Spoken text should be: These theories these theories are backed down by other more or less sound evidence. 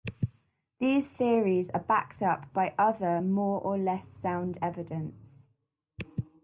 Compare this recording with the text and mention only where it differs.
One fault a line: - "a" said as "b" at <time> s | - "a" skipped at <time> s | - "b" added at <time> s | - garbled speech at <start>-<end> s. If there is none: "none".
- "these theories" skipped at 1.7 s
- "down" said as "up" at 2.2 s